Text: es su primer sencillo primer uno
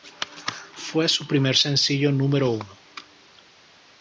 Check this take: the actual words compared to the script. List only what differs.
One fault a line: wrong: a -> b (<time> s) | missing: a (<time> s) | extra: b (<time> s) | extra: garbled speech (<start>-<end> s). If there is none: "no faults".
wrong: es -> fue (0.7 s)
wrong: primer -> número (2.1 s)